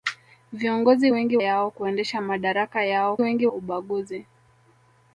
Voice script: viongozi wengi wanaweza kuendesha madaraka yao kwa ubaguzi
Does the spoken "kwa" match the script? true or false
false